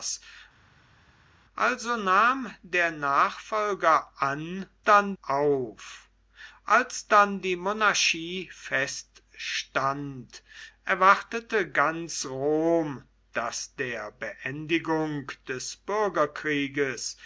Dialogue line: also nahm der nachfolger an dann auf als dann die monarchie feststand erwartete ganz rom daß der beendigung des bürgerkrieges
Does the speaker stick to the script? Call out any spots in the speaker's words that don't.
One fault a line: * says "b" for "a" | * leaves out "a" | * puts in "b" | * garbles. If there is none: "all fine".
all fine